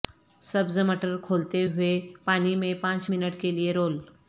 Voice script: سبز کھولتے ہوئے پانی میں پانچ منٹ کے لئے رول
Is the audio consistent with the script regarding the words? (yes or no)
no